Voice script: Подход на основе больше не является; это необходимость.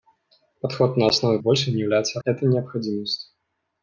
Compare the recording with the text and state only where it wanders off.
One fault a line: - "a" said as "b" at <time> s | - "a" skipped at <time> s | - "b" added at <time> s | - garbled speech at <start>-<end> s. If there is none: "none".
none